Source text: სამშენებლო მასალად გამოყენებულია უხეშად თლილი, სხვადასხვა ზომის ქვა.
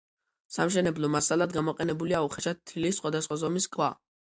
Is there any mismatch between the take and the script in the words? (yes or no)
no